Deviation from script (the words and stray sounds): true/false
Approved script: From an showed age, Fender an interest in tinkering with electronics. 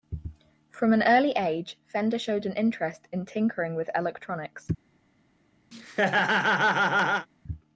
true